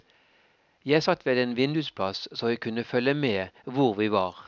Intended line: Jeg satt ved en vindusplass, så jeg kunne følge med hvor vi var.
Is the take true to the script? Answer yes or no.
yes